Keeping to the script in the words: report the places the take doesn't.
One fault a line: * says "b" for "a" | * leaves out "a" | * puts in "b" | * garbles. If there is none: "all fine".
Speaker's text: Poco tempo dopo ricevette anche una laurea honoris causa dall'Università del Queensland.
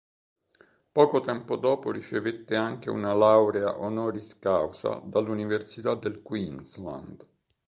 all fine